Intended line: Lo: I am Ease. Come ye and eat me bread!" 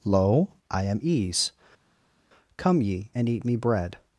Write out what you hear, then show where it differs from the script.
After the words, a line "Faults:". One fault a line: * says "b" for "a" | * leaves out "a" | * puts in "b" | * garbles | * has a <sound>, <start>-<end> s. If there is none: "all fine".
Lo: I am Ease. Come ye and eat me bread!"
Faults:
all fine